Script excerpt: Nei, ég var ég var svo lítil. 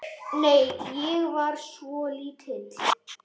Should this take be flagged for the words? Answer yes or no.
yes